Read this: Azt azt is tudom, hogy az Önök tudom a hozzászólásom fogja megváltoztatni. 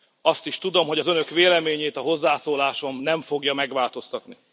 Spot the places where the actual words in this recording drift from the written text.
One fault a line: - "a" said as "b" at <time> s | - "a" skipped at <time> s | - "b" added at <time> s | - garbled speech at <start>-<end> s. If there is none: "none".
- "azt" skipped at 0.5 s
- "tudom" said as "véleményét" at 1.3 s
- "nem" added at 3.0 s